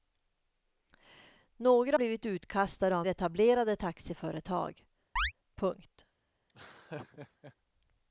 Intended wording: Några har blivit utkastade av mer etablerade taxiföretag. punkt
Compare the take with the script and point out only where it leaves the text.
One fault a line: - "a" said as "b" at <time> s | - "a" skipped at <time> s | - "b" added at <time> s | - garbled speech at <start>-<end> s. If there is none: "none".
- "har" skipped at 2.0 s
- "mer" skipped at 3.1 s